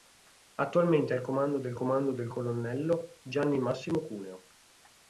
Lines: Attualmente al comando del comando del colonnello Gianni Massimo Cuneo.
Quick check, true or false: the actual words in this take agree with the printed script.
true